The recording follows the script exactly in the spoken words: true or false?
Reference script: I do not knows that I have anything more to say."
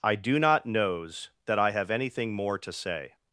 true